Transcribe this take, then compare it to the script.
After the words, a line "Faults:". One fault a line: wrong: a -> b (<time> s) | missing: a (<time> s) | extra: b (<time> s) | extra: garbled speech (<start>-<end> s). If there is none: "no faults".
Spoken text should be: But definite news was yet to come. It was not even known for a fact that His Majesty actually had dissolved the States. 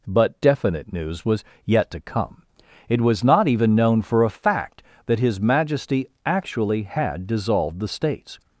But definite news was yet to come. It was not even known for a fact that His Majesty actually had dissolved the States.
Faults:
no faults